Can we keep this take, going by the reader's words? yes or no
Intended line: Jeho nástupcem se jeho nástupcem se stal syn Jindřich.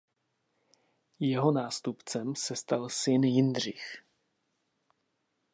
no